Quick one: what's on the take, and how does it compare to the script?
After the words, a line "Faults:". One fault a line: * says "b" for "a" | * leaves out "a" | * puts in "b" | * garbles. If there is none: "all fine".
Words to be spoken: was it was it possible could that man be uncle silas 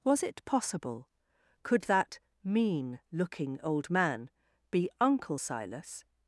was it possible could that mean looking old man be uncle silas
Faults:
* leaves out "was it"
* puts in "mean looking old"